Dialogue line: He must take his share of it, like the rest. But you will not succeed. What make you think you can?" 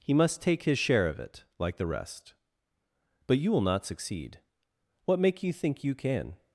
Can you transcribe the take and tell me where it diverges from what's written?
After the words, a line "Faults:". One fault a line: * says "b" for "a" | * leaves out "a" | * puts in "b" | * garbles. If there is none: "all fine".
He must take his share of it, like the rest. But you will not succeed. What make you think you can?"
Faults:
all fine